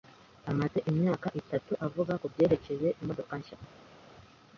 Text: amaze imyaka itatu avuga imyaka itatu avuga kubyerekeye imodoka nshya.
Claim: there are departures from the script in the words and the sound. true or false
true